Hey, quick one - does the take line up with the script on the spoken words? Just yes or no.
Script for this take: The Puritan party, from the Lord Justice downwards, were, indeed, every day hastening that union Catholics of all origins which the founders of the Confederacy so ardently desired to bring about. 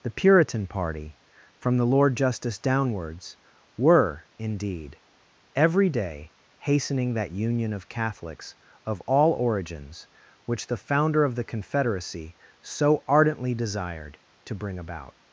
no